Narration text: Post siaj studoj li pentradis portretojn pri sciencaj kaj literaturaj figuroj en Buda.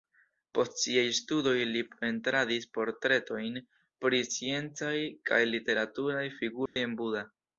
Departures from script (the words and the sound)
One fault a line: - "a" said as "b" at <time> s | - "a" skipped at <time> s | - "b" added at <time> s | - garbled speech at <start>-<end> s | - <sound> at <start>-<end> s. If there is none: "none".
- dropout at 6.7-6.8 s